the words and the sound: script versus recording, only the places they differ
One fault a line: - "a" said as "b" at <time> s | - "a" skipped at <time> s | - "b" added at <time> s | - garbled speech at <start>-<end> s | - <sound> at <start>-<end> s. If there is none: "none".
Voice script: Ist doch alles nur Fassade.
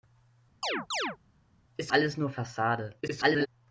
- chirp at 0.6-1.2 s
- "doch" skipped at 1.9 s
- garbled speech at 3.0-3.5 s